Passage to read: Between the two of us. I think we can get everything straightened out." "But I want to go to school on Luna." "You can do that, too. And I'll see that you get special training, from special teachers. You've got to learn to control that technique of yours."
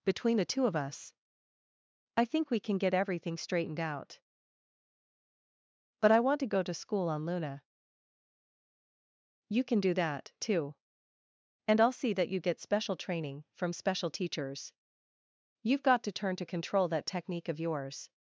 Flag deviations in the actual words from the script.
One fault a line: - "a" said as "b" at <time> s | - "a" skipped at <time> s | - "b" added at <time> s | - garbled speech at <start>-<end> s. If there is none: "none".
- "learn" said as "turn" at 16.1 s